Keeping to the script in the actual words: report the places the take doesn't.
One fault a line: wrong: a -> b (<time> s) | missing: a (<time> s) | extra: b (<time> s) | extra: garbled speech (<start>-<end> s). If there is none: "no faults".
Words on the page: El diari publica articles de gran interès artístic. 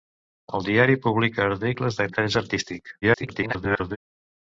missing: gran (2.1 s)
extra: garbled speech (3.0-4.0 s)